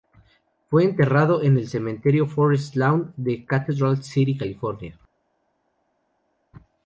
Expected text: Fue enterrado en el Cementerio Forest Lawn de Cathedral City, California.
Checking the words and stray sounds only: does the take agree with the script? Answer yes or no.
yes